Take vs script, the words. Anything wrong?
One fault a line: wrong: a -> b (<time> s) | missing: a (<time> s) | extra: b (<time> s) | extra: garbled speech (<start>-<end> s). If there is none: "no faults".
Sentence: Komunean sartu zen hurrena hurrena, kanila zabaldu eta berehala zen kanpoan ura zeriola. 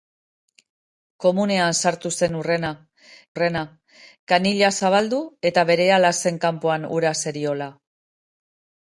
no faults